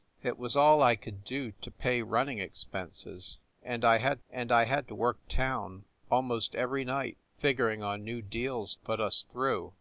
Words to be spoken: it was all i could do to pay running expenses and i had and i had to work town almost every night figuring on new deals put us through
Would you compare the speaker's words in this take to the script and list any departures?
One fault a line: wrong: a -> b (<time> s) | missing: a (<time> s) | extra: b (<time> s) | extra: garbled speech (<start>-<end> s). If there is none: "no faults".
no faults